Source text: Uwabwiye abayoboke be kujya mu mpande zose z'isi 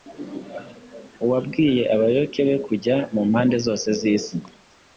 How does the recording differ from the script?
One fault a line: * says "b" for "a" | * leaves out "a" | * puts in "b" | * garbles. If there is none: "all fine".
all fine